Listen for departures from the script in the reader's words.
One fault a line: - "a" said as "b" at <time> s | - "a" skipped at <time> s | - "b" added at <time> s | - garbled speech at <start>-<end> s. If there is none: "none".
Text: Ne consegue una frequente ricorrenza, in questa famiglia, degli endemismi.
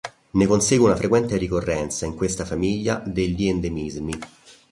none